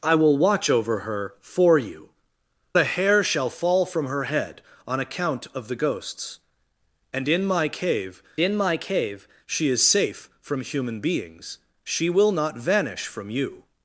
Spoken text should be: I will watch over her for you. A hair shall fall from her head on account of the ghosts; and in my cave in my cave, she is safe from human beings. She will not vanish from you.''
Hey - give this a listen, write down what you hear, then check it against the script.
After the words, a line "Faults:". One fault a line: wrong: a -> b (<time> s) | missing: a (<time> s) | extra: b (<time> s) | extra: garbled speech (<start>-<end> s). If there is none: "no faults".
I will watch over her for you. A hair shall fall from her head on account of the ghosts; and in my cave in my cave, she is safe from human beings. She will not vanish from you.''
Faults:
no faults